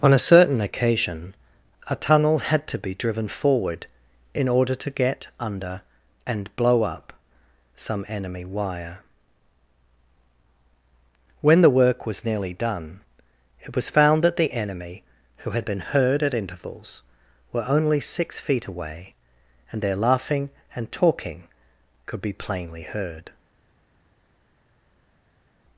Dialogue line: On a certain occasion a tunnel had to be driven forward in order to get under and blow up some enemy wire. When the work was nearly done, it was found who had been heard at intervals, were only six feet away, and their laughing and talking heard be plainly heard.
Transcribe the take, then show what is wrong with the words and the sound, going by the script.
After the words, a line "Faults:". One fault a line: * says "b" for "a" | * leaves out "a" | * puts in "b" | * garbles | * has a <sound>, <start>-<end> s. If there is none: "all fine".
On a certain occasion a tunnel had to be driven forward in order to get under and blow up some enemy wire. When the work was nearly done, it was found that the enemy, who had been heard at intervals, were only six feet away, and their laughing and talking could be plainly heard.
Faults:
* puts in "that the enemy"
* says "could" for "heard"